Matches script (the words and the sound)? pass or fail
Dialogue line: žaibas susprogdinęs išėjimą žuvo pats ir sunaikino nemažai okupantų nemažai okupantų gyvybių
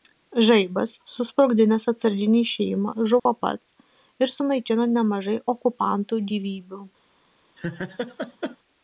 fail